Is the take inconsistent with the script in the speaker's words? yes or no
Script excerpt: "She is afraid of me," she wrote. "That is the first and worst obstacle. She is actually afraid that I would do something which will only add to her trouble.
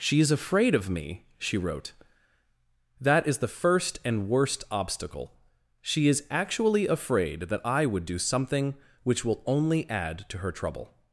no